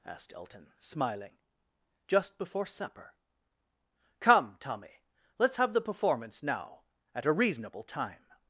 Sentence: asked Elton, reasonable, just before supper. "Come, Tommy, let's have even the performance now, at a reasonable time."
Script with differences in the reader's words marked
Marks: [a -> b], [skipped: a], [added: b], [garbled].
asked Elton, [reasonable, -> smiling] just before supper. "Come, Tommy, let's have [skipped: even] the performance now, at a reasonable time."